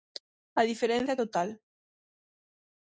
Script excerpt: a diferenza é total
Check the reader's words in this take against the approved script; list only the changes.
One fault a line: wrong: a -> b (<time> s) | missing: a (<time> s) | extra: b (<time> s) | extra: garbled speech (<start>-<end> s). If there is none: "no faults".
no faults